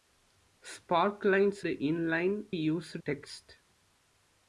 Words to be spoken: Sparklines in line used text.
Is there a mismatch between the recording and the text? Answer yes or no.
no